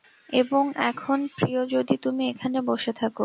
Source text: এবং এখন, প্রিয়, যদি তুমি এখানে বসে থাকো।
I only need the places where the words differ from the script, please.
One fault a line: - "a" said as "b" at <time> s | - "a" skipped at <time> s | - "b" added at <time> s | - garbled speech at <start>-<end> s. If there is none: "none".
none